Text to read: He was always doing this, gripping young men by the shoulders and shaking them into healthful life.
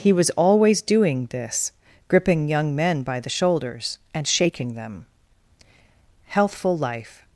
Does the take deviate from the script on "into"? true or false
true